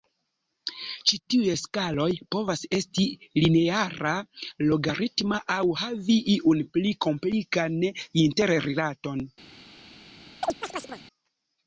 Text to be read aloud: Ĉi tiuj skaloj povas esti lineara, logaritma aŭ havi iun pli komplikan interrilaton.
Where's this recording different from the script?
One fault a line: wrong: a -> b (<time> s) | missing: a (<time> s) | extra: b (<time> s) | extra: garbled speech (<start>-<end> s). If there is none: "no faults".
no faults